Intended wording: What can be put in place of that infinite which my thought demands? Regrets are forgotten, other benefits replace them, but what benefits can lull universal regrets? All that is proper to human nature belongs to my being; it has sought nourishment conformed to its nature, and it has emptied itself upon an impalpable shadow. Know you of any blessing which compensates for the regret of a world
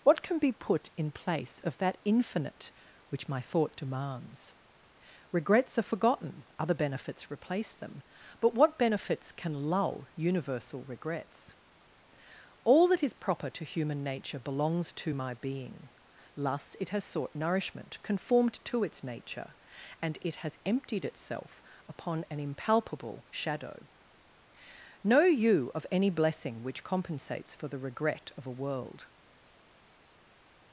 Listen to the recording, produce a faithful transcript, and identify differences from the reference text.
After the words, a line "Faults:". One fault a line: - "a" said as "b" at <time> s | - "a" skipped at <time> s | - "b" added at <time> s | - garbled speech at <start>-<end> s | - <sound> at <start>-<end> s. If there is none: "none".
What can be put in place of that infinite which my thought demands? Regrets are forgotten, other benefits replace them, but what benefits can lull universal regrets? All that is proper to human nature belongs to my being; thus it has sought nourishment conformed to its nature, and it has emptied itself upon an impalpable shadow. Know you of any blessing which compensates for the regret of a world
Faults:
- "thus" added at 16.4 s